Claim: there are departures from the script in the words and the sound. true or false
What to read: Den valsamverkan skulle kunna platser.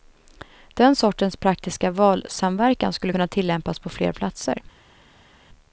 true